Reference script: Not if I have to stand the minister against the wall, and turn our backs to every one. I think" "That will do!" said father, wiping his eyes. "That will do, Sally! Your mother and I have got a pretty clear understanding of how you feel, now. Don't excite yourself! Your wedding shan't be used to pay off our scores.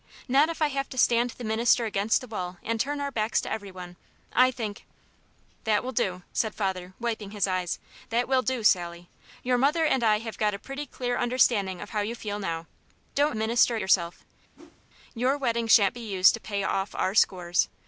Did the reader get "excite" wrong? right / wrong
wrong